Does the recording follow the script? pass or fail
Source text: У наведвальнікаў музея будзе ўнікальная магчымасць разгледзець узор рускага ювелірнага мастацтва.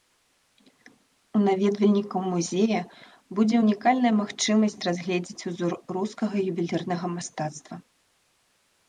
pass